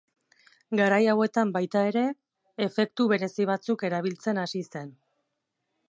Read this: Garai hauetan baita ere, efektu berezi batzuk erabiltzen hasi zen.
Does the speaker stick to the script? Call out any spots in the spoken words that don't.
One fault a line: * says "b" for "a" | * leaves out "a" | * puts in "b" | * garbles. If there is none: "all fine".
all fine